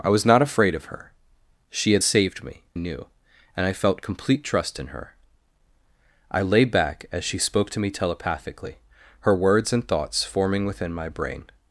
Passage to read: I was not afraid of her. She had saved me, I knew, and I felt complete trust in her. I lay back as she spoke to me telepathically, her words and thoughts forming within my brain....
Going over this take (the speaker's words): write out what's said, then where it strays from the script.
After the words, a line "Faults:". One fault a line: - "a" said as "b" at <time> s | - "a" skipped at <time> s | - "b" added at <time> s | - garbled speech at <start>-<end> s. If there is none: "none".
I was not afraid of her. She had saved me, knew, and I felt complete trust in her. I lay back as she spoke to me telepathically, her words and thoughts forming within my brain....
Faults:
- "I" skipped at 2.6 s